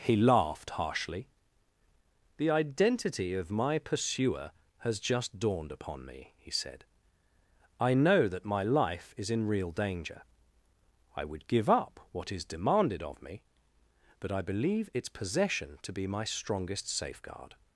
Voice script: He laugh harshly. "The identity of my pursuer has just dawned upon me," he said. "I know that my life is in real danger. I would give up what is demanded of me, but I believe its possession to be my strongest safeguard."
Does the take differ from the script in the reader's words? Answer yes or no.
yes